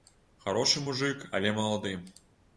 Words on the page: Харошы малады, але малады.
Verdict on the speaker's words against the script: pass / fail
fail